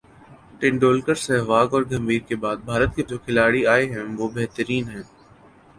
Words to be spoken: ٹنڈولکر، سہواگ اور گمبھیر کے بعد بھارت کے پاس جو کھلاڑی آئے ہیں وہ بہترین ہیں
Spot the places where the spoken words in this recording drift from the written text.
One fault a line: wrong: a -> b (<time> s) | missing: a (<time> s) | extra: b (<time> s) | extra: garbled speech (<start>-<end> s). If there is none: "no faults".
missing: پاس (3.0 s)